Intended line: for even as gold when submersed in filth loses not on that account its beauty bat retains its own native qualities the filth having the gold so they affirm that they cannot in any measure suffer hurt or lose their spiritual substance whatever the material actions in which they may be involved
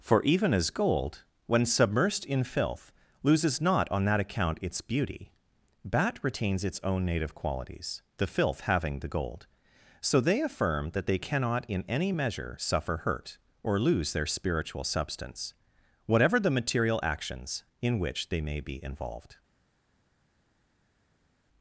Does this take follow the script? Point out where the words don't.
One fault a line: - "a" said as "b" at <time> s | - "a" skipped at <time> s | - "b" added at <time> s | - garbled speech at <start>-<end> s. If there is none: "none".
none